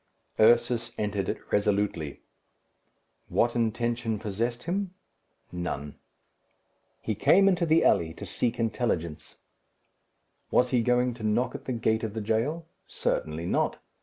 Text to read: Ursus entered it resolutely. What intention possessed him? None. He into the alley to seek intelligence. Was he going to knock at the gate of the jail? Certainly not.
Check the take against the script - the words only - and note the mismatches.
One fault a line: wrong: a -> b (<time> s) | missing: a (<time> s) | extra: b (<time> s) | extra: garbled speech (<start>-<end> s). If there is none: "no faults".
extra: came (7.1 s)